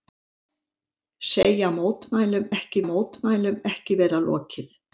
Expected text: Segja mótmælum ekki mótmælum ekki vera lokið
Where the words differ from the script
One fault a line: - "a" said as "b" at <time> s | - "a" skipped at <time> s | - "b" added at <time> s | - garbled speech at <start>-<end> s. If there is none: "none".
none